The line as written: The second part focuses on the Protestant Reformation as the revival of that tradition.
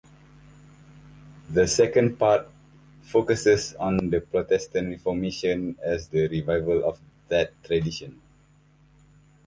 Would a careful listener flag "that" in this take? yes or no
no